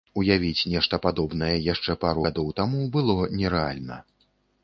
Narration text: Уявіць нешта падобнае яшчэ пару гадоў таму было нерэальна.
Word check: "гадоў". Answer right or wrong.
right